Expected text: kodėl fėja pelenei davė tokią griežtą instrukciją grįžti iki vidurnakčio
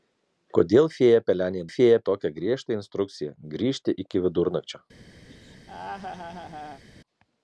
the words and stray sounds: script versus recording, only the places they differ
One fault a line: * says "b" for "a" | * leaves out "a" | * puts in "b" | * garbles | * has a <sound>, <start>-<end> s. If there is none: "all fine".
* says "fėja" for "davė"
* has a laugh, 5.3-6.8 s